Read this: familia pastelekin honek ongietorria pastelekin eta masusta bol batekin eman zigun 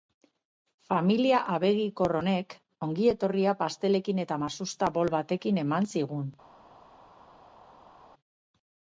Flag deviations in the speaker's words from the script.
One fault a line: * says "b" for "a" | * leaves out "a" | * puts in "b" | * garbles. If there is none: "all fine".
* says "abegikor" for "pastelekin"